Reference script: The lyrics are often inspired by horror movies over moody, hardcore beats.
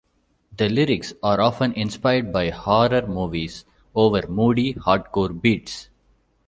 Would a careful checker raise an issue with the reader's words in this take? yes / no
no